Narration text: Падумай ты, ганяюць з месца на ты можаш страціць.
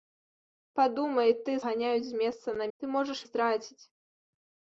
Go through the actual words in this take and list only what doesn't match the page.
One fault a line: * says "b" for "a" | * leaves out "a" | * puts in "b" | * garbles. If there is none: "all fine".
all fine